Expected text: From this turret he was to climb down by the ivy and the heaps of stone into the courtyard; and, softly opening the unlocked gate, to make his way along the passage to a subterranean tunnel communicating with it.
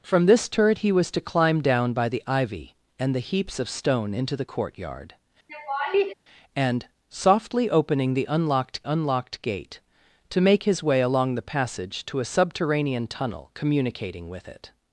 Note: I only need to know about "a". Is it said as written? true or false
true